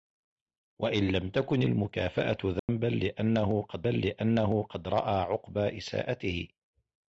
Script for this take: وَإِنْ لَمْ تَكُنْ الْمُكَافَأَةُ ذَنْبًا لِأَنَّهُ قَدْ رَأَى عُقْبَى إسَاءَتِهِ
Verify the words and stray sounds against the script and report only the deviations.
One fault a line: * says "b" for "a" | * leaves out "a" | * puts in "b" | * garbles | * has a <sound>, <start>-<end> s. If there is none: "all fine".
* has a dropout, 2.6-2.7 s
* puts in "لِأَنَّهُ قَدْ"